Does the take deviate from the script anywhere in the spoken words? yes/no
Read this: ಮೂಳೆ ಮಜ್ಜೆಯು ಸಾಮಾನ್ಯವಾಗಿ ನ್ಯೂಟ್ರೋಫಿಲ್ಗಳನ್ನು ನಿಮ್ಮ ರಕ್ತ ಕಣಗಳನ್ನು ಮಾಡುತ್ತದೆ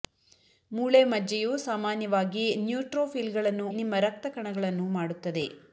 no